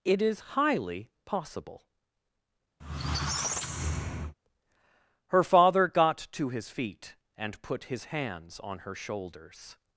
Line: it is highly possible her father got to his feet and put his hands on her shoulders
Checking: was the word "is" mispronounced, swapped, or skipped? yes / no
no